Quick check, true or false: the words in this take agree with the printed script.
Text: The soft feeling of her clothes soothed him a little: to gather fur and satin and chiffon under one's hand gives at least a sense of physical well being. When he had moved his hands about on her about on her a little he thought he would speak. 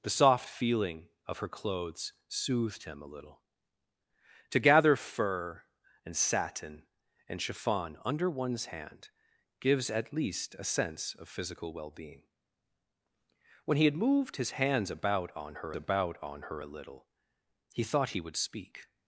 true